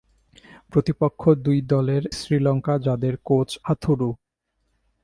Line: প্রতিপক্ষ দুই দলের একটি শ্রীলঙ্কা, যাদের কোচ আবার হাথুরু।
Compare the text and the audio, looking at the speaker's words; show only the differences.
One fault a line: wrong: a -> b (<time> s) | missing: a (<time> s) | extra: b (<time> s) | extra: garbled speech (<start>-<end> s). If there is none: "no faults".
missing: একটি (2.0 s)
missing: আবার (3.5 s)